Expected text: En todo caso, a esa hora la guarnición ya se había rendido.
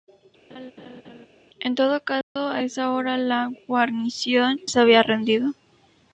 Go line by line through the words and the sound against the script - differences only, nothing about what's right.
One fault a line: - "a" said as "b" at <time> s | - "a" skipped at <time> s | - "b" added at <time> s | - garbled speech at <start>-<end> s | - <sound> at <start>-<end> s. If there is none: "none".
- laugh at 0.5-1.3 s
- dropout at 2.2-2.4 s
- "ya" skipped at 4.6 s